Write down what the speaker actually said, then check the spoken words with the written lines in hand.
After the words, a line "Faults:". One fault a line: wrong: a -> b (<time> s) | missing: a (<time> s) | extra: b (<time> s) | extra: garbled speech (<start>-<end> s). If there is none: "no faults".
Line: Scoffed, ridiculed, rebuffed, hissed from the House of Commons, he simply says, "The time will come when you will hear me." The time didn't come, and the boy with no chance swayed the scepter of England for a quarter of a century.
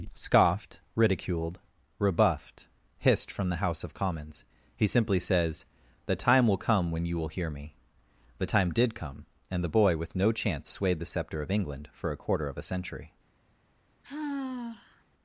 Scoffed, ridiculed, rebuffed, hissed from the House of Commons, he simply says, "The time will come when you will hear me." The time did come, and the boy with no chance swayed the scepter of England for a quarter of a century.
Faults:
wrong: didn't -> did (8.7 s)